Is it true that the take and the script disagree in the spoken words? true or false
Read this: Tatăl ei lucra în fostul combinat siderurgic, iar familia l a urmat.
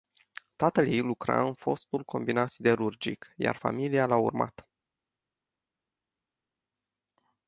false